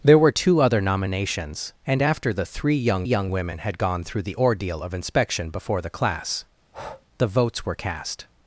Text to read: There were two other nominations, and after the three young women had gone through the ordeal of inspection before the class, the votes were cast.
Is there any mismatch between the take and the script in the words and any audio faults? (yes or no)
yes